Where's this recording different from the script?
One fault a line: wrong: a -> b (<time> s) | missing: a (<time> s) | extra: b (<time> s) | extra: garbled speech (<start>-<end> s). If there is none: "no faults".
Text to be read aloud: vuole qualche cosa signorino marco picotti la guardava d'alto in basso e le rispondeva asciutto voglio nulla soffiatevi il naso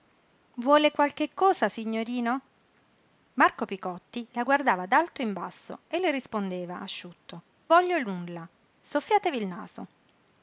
no faults